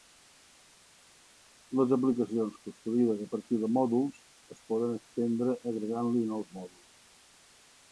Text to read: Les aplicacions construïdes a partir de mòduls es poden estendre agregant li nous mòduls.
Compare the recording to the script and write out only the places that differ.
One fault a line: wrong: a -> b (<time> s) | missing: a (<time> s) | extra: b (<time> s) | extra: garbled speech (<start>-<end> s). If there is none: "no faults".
no faults